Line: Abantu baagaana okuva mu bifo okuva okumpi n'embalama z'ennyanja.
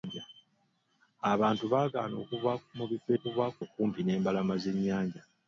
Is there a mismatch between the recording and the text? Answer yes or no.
no